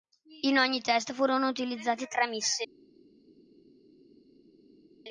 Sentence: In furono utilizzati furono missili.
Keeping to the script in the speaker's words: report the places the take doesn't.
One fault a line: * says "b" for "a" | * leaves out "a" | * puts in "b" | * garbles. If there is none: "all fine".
* puts in "ogni test"
* says "tre" for "furono"